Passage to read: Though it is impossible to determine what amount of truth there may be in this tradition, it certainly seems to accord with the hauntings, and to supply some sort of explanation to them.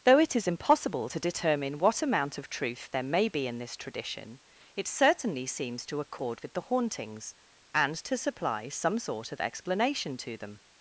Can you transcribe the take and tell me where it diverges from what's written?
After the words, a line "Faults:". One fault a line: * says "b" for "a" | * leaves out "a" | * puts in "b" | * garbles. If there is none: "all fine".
Though it is impossible to determine what amount of truth there may be in this tradition, it certainly seems to accord with the hauntings, and to supply some sort of explanation to them.
Faults:
all fine